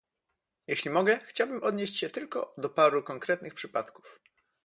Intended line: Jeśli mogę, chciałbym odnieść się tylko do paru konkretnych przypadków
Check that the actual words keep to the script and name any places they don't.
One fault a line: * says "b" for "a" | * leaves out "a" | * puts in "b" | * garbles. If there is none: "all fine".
all fine